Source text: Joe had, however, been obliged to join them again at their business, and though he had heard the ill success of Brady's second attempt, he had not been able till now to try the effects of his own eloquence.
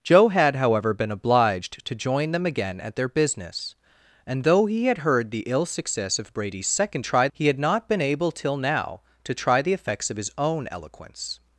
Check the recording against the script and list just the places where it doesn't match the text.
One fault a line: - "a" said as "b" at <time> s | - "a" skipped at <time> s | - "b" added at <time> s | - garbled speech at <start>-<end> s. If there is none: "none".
- "attempt" said as "try" at 7.0 s